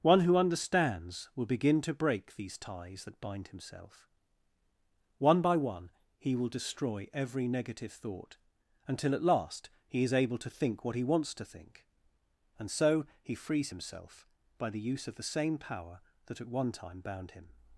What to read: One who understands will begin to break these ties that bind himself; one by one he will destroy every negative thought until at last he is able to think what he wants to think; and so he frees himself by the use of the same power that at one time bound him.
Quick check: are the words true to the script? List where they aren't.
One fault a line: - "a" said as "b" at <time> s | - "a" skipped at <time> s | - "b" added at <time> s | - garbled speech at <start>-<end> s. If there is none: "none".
none